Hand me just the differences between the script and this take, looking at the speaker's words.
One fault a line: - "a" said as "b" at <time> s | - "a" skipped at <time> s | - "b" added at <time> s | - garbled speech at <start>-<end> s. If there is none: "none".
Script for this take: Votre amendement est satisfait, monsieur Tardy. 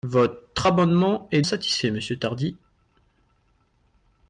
none